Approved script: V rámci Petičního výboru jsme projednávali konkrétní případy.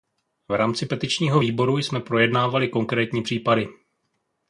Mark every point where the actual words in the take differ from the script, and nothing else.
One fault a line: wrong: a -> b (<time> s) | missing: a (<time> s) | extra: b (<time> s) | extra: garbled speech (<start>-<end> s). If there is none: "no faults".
no faults